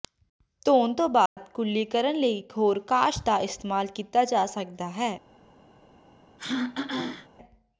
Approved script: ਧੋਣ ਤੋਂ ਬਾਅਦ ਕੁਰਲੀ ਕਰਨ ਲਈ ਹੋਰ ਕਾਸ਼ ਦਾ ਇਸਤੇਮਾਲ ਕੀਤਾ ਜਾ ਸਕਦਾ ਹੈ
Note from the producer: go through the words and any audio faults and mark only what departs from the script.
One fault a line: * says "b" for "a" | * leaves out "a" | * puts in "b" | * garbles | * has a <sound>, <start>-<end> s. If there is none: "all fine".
* has a dropout, 1.3-1.4 s
* puts in "ਇਕ"
* has a throat clearing, 6.4-7.3 s